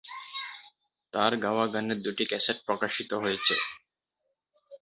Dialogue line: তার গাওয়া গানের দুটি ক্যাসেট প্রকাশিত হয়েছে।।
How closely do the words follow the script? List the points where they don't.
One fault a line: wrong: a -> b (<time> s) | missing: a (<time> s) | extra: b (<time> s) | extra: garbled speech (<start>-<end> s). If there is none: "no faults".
no faults